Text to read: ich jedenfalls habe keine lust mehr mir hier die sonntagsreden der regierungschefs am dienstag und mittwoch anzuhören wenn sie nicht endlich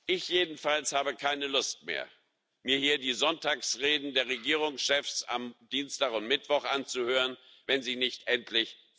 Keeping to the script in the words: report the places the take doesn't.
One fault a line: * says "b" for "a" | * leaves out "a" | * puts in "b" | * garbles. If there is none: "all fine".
all fine